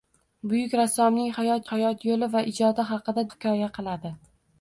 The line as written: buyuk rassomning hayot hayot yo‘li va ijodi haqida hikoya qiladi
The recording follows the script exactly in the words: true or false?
true